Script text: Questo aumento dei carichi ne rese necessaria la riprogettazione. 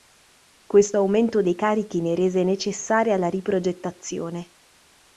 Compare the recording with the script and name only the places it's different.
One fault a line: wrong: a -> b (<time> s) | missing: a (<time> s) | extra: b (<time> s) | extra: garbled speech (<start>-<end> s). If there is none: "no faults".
no faults